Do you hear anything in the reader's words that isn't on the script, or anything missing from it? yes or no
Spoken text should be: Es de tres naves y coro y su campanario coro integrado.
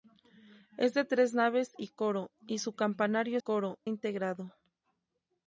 no